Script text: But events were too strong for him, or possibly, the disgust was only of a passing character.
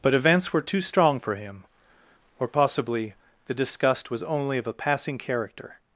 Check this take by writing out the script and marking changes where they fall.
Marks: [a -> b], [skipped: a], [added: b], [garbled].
But events were too strong for him, or possibly, the disgust was only of a passing character.